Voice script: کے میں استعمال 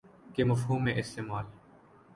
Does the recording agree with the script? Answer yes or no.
no